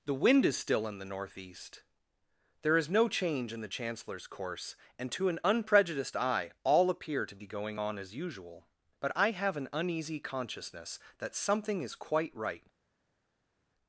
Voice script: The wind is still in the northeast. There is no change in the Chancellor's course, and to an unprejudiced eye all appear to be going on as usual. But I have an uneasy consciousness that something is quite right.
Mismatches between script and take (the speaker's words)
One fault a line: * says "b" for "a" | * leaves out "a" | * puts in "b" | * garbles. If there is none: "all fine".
all fine